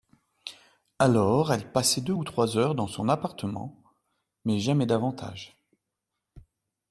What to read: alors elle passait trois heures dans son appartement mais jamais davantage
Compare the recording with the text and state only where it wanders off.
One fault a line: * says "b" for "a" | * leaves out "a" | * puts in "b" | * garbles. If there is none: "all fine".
* puts in "deux ou"